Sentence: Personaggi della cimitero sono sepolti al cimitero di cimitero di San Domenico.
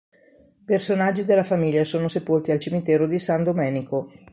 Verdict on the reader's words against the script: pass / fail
fail